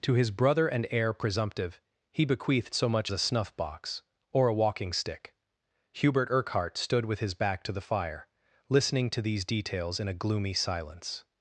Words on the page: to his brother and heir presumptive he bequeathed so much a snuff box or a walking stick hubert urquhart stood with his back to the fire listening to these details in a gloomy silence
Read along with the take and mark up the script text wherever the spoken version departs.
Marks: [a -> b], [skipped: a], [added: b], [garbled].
to his brother and heir presumptive he bequeathed so much a snuff box or a walking stick hubert urquhart stood with his back to the fire listening to these details in a gloomy silence